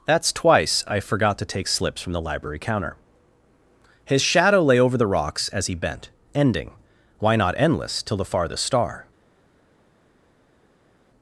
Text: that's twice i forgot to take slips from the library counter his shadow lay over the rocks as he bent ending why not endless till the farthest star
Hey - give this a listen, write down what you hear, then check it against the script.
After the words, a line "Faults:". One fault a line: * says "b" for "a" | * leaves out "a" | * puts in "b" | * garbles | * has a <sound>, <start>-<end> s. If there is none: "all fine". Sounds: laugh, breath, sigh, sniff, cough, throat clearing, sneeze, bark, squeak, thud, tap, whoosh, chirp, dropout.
that's twice i forgot to take slips from the library counter his shadow lay over the rocks as he bent ending why not endless till the farthest star
Faults:
all fine